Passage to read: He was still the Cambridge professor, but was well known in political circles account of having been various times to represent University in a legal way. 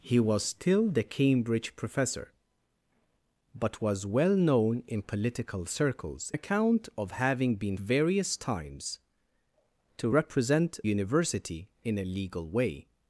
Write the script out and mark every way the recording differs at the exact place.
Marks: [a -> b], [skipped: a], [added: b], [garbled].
He was still the Cambridge professor, but was well known in political circles account of having been various times to represent University in a legal way.